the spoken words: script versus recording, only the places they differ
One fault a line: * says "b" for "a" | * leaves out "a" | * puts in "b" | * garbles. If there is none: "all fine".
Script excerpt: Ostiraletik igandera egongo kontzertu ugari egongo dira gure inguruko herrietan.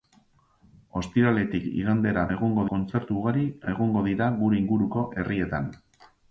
all fine